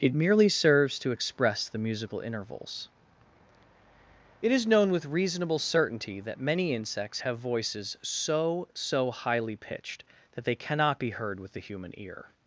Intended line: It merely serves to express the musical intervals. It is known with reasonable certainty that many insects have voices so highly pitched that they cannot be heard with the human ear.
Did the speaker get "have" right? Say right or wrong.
right